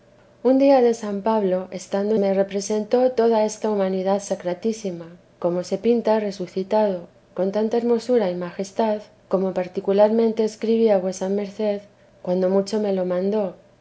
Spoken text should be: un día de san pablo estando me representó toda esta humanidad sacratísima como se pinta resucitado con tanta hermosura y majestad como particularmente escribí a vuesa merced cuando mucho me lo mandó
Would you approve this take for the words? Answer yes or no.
yes